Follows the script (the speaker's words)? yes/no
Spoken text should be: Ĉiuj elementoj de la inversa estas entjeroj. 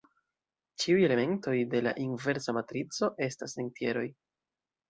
no